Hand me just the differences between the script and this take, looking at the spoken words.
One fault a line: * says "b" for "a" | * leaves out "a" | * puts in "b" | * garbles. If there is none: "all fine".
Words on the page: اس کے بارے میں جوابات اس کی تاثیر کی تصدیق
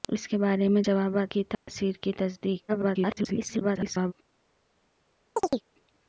* leaves out "اس"
* garbles